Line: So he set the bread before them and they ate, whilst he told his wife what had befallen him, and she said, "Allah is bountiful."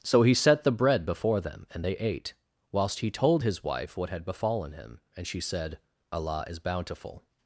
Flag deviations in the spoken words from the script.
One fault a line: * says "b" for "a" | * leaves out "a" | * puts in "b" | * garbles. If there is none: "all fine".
all fine